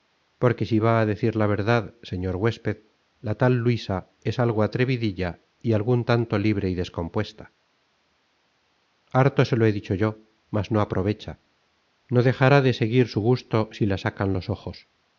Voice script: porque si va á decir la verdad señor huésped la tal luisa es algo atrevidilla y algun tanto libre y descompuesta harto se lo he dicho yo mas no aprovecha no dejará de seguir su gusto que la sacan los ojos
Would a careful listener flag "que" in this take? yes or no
yes